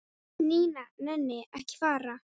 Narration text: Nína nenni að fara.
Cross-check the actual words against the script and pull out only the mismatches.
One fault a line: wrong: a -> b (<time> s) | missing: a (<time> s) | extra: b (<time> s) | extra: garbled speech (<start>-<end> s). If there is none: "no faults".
extra: ekki (1.6 s)